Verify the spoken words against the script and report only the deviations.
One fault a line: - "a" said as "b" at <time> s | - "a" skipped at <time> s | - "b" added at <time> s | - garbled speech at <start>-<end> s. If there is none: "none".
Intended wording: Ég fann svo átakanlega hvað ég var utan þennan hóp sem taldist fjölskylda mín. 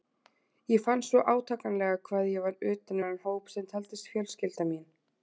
none